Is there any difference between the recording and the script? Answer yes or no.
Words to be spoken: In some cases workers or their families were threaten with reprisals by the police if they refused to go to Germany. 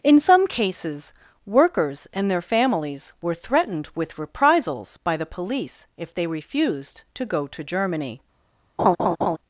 yes